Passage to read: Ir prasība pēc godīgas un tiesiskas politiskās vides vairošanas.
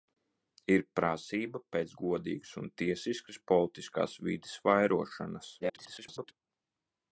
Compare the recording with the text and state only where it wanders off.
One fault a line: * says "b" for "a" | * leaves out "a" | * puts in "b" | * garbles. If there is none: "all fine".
* garbles